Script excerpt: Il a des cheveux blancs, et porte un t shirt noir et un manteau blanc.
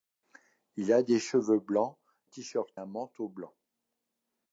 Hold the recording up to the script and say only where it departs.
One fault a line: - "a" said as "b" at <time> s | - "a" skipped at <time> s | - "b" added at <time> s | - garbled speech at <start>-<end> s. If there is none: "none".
- "et porte un" skipped at 2.0 s
- "noir et" skipped at 2.7 s